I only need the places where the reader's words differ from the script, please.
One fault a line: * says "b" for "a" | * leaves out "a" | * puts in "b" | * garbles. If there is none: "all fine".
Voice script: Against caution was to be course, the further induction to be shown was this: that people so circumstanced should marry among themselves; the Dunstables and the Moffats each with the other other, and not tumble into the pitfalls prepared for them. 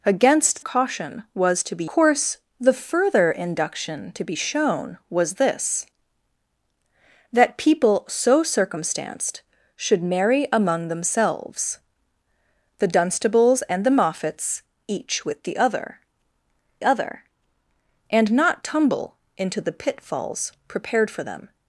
all fine